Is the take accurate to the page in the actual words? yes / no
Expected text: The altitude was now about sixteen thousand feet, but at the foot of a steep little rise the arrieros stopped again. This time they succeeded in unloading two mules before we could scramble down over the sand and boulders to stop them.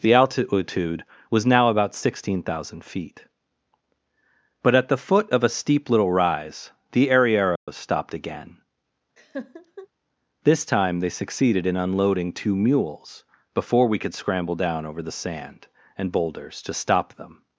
yes